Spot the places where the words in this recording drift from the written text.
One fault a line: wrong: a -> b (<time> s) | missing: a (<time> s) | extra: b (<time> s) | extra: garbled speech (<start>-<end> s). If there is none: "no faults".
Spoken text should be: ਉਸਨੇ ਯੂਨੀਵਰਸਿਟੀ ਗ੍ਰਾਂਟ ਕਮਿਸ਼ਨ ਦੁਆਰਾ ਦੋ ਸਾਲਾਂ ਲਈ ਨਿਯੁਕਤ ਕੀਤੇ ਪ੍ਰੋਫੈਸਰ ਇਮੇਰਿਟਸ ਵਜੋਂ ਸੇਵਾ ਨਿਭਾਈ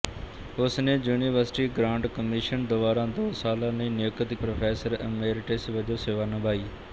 missing: ਕੀਤੇ (4.3 s)